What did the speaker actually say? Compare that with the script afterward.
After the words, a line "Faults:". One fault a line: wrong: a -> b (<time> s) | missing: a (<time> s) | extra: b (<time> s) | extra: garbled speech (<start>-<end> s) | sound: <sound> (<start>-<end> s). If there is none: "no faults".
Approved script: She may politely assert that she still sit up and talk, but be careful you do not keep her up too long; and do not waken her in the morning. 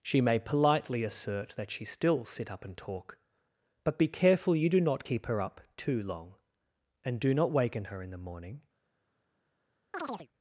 She may politely assert that she still sit up and talk, but be careful you do not keep her up too long; and do not waken her in the morning.
Faults:
sound: chirp (9.9-10.3 s)